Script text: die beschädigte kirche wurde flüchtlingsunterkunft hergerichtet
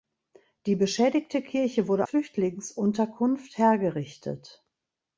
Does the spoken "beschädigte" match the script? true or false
true